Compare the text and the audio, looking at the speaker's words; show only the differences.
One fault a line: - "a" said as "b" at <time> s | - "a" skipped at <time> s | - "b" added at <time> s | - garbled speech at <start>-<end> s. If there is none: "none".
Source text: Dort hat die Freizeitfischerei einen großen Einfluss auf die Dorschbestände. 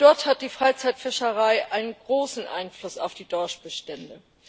none